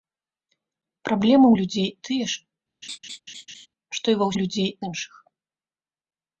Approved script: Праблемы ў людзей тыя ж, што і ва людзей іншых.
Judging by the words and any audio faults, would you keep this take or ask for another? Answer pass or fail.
fail